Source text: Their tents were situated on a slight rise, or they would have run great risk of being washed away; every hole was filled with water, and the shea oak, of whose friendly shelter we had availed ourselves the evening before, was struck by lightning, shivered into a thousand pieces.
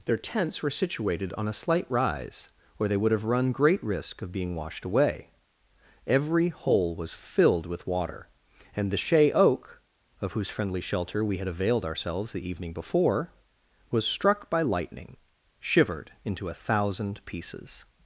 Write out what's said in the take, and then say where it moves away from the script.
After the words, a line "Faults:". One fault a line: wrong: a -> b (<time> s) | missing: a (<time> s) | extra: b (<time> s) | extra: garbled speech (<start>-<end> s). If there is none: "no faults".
Their tents were situated on a slight rise, or they would have run great risk of being washed away; every hole was filled with water, and the shea oak, of whose friendly shelter we had availed ourselves the evening before, was struck by lightning, shivered into a thousand pieces.
Faults:
no faults